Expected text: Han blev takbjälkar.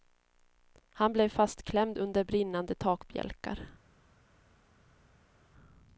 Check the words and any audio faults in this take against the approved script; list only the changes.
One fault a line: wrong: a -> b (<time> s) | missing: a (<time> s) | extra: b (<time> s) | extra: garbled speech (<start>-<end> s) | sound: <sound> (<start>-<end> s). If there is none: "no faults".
extra: fastklämd under brinnande (1.3 s)